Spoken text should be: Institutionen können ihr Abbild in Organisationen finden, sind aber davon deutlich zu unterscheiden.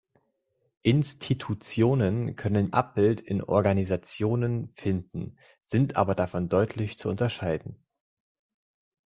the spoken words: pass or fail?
fail